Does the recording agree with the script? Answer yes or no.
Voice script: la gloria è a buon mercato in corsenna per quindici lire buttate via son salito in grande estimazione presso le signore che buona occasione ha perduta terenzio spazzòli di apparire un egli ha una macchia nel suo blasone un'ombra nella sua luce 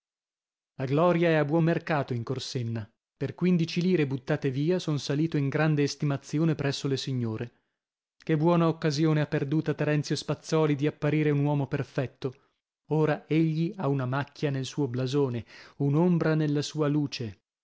no